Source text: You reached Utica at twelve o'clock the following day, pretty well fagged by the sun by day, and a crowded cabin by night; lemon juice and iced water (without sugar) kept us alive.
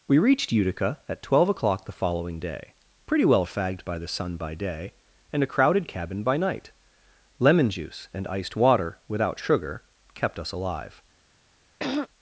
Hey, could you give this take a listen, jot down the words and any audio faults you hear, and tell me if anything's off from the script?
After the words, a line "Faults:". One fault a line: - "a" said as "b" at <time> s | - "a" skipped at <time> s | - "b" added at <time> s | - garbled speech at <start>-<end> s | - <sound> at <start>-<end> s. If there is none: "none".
We reached Utica at twelve o'clock the following day, pretty well fagged by the sun by day, and a crowded cabin by night; lemon juice and iced water (without sugar) kept us alive.
Faults:
- "You" said as "We" at 0.1 s
- throat clearing at 11.8-12.1 s